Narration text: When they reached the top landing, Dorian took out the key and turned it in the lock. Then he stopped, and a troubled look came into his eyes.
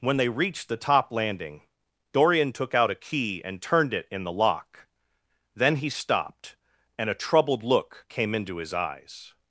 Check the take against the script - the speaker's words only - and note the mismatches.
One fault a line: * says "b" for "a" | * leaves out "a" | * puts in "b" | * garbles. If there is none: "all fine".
* says "a" for "the"